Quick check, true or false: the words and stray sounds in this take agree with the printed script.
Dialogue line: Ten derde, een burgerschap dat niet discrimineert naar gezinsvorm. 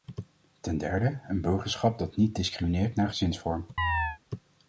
false